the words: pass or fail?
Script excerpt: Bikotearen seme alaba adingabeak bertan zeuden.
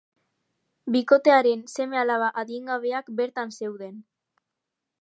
pass